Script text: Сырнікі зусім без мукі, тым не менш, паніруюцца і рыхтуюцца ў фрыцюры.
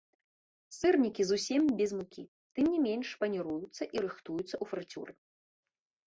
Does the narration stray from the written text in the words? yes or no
no